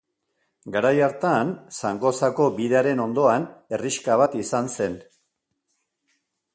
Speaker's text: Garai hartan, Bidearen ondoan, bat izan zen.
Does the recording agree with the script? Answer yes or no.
no